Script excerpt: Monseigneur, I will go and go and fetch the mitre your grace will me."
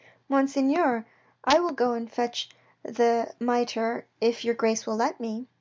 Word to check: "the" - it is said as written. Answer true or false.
true